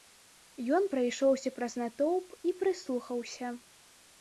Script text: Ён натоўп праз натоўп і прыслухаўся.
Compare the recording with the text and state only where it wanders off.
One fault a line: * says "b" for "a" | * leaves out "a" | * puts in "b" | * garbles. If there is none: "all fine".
* says "прайшоўся" for "натоўп"